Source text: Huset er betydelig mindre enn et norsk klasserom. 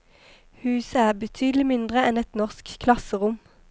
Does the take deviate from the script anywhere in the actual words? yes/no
no